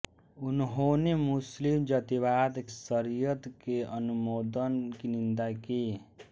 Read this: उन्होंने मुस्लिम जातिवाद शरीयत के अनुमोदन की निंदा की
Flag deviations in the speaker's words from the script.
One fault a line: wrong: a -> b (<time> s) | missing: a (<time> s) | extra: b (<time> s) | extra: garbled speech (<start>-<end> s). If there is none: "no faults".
no faults